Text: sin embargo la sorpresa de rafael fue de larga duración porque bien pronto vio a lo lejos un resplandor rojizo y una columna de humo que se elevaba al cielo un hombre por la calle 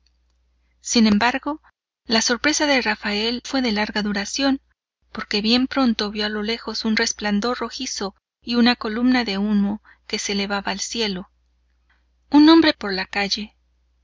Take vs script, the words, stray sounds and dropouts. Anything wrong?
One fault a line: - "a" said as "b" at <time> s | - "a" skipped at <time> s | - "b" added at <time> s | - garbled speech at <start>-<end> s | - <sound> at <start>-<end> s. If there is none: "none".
none